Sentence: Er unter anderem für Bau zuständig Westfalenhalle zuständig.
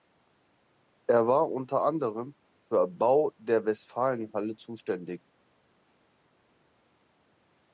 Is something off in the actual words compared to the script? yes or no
yes